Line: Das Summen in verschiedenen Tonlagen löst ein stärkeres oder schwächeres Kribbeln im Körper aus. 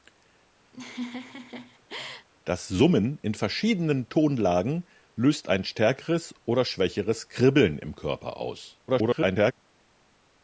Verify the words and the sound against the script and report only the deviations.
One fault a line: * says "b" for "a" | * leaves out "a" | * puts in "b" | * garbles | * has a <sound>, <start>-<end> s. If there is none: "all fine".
* has a laugh, 0.7-2.3 s
* garbles